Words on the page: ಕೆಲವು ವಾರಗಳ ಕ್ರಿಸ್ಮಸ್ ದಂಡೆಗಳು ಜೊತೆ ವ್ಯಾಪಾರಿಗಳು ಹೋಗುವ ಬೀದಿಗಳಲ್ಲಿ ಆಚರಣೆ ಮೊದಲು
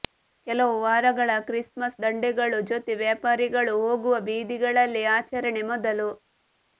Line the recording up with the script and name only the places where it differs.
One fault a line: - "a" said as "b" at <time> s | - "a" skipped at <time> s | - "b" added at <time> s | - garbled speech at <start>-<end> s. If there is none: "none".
none